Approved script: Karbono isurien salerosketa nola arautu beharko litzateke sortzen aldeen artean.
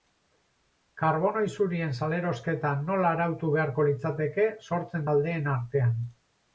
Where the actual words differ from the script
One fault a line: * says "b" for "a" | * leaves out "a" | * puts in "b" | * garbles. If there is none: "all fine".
all fine